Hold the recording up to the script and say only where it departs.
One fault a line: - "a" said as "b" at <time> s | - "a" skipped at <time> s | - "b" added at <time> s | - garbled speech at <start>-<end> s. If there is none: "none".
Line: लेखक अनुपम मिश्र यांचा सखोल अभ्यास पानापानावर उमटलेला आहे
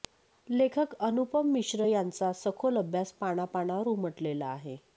none